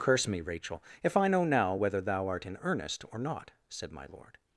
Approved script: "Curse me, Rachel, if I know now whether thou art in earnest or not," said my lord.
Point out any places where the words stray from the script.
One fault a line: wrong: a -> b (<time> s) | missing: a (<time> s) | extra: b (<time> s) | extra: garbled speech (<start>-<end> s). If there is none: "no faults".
no faults